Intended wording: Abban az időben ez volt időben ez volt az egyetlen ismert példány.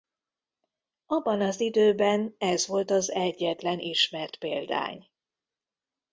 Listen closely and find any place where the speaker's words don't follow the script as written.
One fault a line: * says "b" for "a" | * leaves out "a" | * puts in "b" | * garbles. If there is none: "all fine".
* leaves out "időben ez volt"